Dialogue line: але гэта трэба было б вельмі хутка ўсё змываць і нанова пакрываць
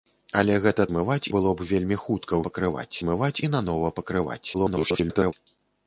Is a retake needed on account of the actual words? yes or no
yes